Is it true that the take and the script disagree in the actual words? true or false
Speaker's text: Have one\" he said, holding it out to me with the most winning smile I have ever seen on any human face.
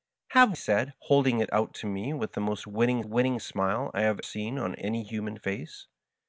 true